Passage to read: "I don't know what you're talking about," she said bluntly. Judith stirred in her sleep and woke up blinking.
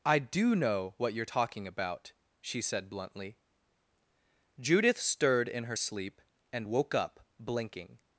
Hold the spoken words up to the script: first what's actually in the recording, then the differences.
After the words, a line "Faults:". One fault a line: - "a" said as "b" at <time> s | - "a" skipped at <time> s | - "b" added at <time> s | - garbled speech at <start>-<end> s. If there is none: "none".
"I do know what you're talking about," she said bluntly. Judith stirred in her sleep and woke up blinking.
Faults:
- "don't" said as "do" at 0.2 s